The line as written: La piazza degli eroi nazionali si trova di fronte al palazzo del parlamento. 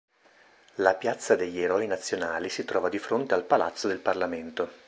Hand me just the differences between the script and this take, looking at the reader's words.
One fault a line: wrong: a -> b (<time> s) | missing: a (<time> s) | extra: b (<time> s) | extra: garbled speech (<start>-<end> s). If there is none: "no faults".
no faults